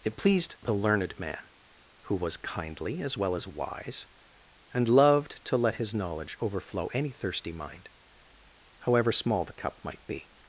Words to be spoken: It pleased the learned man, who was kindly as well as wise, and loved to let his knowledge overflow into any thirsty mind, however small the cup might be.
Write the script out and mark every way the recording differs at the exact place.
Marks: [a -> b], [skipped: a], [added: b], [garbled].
It pleased the learned man, who was kindly as well as wise, and loved to let his knowledge overflow [skipped: into] any thirsty mind, however small the cup might be.